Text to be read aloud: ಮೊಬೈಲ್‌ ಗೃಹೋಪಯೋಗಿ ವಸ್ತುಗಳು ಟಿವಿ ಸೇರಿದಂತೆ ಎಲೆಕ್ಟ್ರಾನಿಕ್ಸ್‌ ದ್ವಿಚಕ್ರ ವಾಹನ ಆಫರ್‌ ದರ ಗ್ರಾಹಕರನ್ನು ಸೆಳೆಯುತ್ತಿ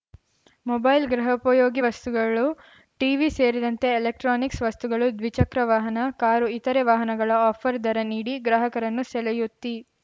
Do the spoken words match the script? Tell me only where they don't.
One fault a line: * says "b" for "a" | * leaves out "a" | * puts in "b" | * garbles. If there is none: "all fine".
* puts in "ವಸ್ತುಗಳು"
* puts in "ಕಾರು ಇತರೆ ವಾಹನಗಳ"
* puts in "ನೀಡಿ"